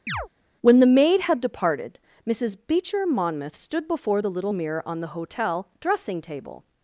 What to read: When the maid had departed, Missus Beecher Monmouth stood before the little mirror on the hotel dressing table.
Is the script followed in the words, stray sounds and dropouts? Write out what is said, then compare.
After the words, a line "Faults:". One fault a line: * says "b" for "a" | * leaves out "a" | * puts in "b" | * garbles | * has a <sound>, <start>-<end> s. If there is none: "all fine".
When the maid had departed, Missus Beecher Monmouth stood before the little mirror on the hotel dressing table.
Faults:
* has a chirp, 0.1-0.3 s